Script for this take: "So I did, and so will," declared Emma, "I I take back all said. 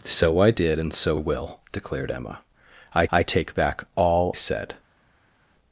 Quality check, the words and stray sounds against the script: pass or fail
pass